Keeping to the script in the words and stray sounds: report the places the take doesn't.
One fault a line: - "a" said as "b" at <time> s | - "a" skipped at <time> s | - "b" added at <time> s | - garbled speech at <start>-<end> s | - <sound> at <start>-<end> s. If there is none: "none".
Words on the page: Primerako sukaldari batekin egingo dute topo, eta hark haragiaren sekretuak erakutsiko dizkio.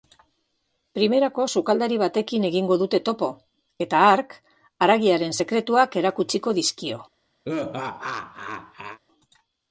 - laugh at 7.4-9.0 s